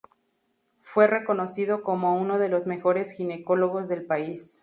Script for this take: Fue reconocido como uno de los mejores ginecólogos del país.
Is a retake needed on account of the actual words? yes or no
no